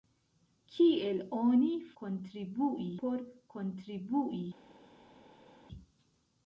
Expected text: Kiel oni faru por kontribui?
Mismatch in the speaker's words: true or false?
true